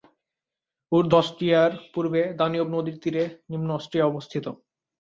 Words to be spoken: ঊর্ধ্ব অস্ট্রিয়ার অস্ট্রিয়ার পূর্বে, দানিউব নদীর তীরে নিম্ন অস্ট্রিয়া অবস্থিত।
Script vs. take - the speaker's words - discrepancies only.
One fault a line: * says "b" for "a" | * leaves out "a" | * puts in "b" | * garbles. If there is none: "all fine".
* leaves out "অস্ট্রিয়ার"